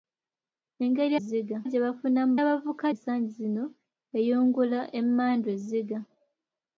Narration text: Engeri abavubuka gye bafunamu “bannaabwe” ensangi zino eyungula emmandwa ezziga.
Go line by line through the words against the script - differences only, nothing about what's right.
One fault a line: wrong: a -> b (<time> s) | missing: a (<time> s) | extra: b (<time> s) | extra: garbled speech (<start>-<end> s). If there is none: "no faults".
wrong: abavubuka -> ezziga (1.2 s)
wrong: bannaabwe -> abavubuka (2.4 s)